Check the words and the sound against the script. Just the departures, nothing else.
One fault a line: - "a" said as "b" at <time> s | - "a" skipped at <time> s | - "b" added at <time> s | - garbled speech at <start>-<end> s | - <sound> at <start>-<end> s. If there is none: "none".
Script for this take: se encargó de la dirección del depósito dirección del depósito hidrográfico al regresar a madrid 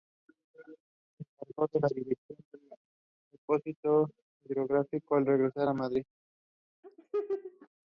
- "dirección del depósito" skipped at 4.1 s
- laugh at 6.8-7.7 s